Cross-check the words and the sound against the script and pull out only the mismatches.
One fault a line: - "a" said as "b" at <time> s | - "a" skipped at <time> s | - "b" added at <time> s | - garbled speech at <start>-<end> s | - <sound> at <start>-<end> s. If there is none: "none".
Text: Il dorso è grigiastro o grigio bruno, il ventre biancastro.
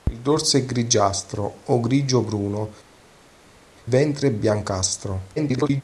- "il" skipped at 2.7 s
- garbled speech at 5.4-5.8 s